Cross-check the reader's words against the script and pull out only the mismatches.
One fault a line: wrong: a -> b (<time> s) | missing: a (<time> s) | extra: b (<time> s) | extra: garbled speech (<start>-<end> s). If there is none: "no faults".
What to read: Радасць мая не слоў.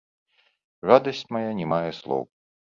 extra: мае (1.7 s)